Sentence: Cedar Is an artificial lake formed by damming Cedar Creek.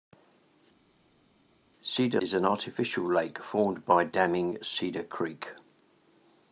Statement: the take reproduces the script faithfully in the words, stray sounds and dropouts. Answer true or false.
true